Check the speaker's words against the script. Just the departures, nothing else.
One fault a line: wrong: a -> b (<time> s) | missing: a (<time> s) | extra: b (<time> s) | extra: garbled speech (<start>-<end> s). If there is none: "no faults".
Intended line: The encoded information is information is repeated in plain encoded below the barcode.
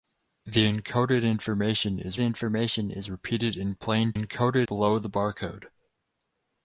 no faults